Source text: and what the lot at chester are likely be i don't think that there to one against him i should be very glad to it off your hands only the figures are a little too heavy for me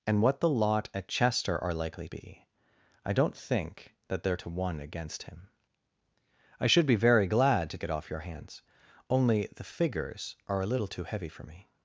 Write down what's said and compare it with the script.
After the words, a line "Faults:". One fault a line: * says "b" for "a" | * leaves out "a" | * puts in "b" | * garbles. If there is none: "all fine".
and what the lot at chester are likely be i don't think that there to one against him i should be very glad to it off your hands only the figures are a little too heavy for me
Faults:
all fine